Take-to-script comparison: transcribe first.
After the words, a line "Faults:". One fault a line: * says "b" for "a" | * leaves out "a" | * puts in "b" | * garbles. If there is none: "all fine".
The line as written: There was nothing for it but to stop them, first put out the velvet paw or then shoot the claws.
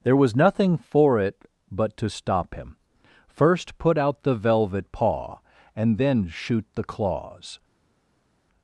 There was nothing for it but to stop him, first put out the velvet paw and then shoot the claws.
Faults:
* says "him" for "them"
* says "and" for "or"